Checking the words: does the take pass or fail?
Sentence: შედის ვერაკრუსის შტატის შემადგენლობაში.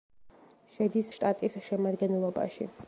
fail